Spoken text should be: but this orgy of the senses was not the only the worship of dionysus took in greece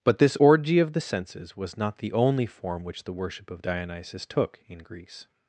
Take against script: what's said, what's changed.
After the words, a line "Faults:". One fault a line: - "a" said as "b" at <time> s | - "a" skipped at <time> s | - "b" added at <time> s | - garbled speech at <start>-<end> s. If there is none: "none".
but this orgy of the senses was not the only form which the worship of dionysus took in greece
Faults:
- "form which" added at 2.5 s